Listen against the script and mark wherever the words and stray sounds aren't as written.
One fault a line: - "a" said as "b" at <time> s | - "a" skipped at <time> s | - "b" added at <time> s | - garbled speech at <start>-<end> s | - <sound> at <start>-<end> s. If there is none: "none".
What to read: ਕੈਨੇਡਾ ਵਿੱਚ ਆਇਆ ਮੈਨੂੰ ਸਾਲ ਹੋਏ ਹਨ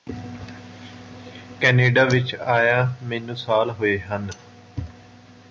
none